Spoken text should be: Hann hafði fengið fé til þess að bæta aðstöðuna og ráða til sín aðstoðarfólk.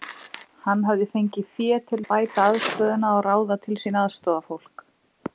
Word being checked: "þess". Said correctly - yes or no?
no